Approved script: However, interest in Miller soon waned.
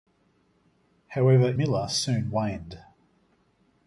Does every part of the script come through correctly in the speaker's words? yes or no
no